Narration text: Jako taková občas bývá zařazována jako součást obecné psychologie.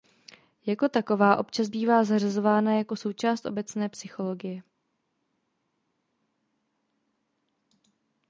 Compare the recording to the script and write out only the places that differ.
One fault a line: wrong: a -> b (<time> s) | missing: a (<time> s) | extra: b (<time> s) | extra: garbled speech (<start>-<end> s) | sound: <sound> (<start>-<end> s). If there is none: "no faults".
no faults